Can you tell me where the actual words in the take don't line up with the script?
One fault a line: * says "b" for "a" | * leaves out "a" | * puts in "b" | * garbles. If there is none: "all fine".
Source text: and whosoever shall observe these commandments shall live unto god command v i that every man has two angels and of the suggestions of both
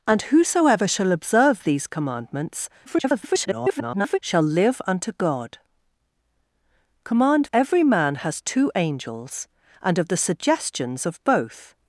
* garbles
* leaves out "v i that"